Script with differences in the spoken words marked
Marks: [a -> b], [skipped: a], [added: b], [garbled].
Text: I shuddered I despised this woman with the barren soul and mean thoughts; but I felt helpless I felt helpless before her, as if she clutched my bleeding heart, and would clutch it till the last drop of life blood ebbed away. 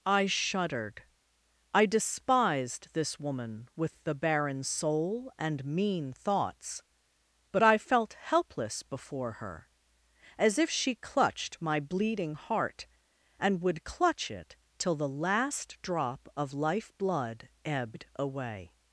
I shuddered I despised this woman with the barren soul and mean thoughts; but I felt helpless [skipped: I felt helpless] before her, as if she clutched my bleeding heart, and would clutch it till the last drop of life blood ebbed away.